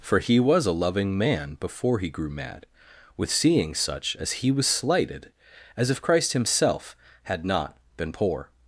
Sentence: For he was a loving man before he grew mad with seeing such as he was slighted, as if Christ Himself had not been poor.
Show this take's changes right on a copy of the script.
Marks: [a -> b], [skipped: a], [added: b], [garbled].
For he was a loving man before he grew mad with seeing such as he was slighted, as if Christ Himself had not been poor.